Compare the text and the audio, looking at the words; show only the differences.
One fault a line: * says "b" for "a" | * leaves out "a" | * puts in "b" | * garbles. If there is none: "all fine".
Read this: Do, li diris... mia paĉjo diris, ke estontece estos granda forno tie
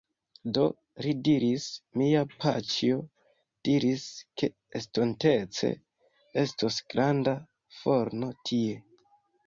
all fine